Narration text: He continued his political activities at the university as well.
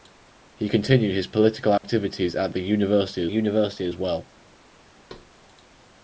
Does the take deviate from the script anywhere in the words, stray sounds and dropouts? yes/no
yes